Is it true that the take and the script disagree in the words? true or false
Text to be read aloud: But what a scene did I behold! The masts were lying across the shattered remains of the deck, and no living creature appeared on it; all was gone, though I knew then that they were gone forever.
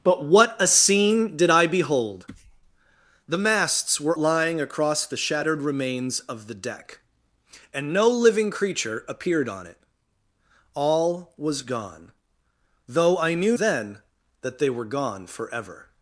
false